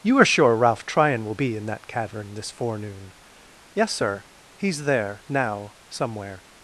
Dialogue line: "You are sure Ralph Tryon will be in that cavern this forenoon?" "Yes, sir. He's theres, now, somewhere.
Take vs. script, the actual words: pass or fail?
fail